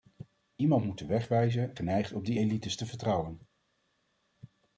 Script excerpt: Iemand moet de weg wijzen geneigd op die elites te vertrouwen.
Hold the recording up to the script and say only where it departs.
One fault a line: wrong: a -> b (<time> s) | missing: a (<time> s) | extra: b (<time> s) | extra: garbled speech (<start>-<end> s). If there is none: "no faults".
no faults